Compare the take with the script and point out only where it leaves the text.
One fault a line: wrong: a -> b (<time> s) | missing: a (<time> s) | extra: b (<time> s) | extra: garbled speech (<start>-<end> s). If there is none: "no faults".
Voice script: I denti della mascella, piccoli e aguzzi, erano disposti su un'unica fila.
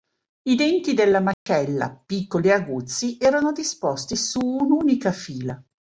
no faults